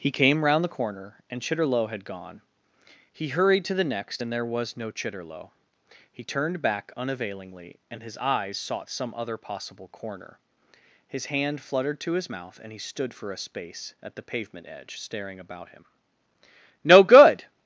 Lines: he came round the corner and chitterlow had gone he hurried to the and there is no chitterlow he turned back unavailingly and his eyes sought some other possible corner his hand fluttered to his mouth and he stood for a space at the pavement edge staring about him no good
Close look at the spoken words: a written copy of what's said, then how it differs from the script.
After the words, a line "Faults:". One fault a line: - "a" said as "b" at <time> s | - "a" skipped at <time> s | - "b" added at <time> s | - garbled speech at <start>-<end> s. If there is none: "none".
he came round the corner and chitterlow had gone he hurried to the next and there was no chitterlow he turned back unavailingly and his eyes sought some other possible corner his hand fluttered to his mouth and he stood for a space at the pavement edge staring about him no good
Faults:
- "next" added at 3.8 s
- "is" said as "was" at 4.4 s